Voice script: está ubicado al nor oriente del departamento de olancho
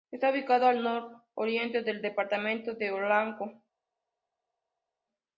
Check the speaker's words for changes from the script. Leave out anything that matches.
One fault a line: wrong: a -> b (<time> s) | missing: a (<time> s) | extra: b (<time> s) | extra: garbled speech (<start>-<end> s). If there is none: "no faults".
no faults